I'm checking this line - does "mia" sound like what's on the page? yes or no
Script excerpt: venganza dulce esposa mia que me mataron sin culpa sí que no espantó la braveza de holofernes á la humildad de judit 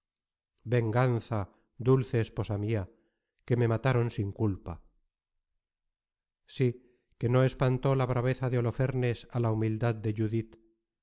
yes